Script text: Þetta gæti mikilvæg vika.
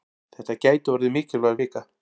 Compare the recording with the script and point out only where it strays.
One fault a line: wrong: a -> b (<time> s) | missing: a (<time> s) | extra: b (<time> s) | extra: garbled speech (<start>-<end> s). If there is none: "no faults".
extra: orðið (0.9 s)